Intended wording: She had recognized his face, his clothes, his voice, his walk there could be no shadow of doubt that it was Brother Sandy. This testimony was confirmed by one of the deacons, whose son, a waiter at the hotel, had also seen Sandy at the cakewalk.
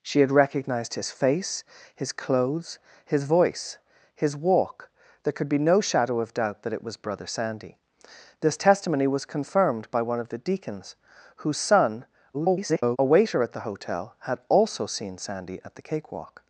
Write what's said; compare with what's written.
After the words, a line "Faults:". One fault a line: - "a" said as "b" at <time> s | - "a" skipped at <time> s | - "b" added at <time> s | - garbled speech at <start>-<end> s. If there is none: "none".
She had recognized his face, his clothes, his voice, his walk there could be no shadow of doubt that it was Brother Sandy. This testimony was confirmed by one of the deacons, whose son, [garbled] a waiter at the hotel, had also seen Sandy at the cakewalk.
Faults:
- garbled speech at 12.3-13.0 s